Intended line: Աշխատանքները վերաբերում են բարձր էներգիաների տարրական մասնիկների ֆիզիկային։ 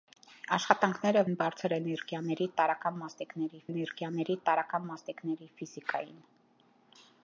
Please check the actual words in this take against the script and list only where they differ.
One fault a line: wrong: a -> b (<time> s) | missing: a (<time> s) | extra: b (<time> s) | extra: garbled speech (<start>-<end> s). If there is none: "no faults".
missing: վերաբերում (1.2 s)
extra: էներգիաների տարրական մասնիկների (3.7 s)